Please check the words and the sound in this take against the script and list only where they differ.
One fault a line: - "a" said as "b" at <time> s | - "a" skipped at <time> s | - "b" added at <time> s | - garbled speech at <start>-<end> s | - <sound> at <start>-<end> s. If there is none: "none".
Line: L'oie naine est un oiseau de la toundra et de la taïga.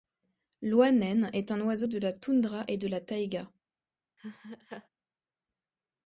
- laugh at 4.2-4.9 s